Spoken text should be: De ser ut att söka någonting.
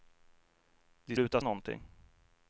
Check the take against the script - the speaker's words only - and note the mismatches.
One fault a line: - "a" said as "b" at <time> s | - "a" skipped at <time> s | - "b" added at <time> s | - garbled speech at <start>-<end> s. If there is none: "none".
- "ser" skipped at 1.2 s
- "söka" skipped at 1.4 s